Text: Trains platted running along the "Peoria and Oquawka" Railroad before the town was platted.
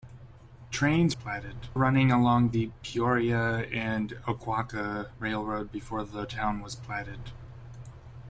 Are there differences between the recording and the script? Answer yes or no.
no